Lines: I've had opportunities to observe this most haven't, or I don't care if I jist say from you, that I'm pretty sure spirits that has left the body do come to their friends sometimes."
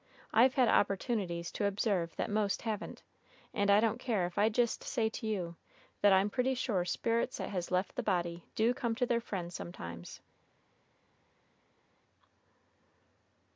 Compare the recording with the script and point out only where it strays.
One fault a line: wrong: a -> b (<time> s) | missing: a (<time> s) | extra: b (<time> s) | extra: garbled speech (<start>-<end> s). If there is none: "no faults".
wrong: this -> that (2.1 s)
wrong: or -> and (3.5 s)
wrong: from -> to (5.1 s)